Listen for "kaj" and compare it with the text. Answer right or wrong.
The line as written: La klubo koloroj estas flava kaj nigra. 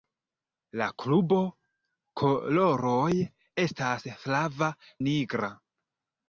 wrong